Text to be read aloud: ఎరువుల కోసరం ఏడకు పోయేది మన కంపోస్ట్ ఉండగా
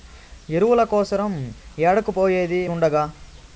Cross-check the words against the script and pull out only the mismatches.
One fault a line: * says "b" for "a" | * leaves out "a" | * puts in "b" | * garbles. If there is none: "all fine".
* leaves out "మన కంపోస్ట్"